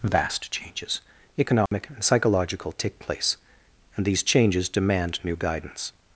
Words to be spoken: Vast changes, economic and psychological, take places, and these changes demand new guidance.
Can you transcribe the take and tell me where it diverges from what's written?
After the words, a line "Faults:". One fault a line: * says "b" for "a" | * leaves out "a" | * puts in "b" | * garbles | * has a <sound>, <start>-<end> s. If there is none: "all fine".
Vast changes, economic and psychological, take place, and these changes demand new guidance.
Faults:
* has a dropout, 1.7-1.7 s
* says "place" for "places"